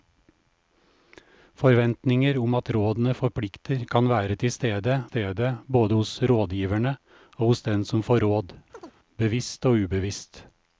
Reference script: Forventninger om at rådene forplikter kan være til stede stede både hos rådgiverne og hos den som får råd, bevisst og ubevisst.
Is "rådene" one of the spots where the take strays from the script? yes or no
no